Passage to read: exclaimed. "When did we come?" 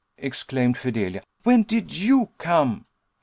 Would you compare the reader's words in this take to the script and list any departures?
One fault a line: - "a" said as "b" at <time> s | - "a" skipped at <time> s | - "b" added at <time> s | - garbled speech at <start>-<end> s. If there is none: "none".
- "Fidelia" added at 0.8 s
- "we" said as "you" at 1.9 s